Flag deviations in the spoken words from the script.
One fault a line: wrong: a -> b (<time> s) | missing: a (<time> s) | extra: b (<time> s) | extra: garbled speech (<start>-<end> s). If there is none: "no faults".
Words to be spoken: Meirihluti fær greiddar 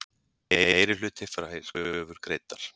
extra: kröfur (1.7 s)